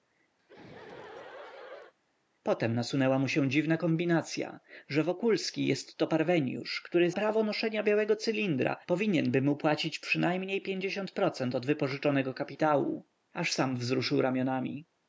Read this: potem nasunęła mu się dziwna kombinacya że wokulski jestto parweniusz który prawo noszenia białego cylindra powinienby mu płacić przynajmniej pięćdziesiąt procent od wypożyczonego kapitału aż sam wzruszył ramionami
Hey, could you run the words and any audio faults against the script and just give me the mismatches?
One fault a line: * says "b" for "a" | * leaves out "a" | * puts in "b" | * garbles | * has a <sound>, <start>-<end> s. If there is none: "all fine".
* has a laugh, 0.4-1.9 s